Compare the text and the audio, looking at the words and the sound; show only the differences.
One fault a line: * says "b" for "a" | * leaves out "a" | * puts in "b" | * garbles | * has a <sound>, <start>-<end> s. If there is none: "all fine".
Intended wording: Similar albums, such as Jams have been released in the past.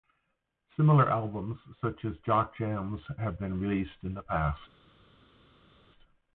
* puts in "Jock"